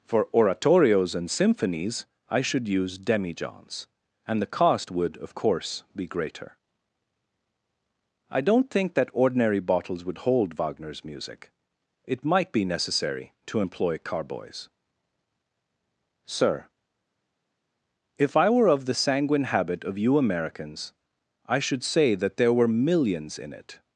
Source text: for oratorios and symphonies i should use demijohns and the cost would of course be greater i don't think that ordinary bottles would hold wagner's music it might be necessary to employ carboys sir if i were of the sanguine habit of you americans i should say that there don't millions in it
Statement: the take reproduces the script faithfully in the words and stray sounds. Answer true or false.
false